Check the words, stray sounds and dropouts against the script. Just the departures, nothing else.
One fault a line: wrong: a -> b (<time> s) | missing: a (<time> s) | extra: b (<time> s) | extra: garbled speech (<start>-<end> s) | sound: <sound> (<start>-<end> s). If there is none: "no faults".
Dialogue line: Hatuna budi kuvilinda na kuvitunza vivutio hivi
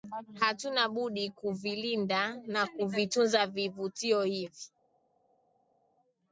no faults